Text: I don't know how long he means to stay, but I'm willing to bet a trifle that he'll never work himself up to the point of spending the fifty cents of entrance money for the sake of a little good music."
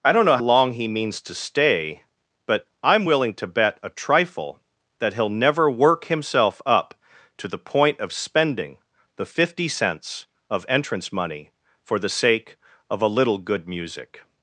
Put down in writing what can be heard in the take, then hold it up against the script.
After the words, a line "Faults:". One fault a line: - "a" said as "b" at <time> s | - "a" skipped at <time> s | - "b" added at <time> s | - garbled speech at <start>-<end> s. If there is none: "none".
I don't know long he means to stay, but I'm willing to bet a trifle that he'll never work himself up to the point of spending the fifty cents of entrance money for the sake of a little good music."
Faults:
- "how" skipped at 0.4 s